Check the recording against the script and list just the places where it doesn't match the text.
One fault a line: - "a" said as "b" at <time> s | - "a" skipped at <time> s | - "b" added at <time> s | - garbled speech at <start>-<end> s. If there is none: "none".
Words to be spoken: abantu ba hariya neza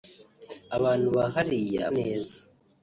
none